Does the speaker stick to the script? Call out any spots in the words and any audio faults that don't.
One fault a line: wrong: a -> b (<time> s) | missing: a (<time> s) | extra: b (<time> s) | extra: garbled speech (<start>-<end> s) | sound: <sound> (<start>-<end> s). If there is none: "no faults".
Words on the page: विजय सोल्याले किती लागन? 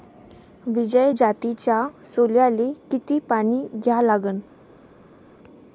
extra: जातीच्या (1.2 s)
extra: पानी द्या (3.3 s)